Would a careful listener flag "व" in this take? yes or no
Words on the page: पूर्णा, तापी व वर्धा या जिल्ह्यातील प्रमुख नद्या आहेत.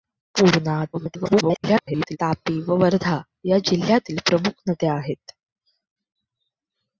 no